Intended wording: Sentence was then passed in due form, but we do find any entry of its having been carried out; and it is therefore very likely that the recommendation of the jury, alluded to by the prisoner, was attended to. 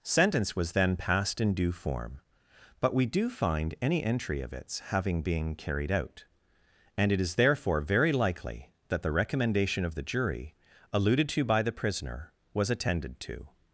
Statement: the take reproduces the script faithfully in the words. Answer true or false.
true